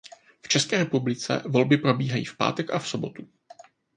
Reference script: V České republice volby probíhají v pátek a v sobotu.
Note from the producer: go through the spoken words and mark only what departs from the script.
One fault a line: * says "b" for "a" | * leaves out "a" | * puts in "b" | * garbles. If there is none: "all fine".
all fine